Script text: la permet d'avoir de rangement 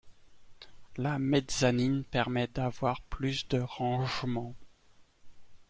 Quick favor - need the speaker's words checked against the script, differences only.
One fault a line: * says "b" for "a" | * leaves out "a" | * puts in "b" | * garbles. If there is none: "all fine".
* puts in "mezzanine"
* puts in "plus"